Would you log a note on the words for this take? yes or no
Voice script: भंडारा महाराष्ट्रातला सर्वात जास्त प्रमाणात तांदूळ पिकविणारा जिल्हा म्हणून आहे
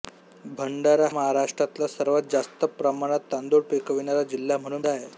no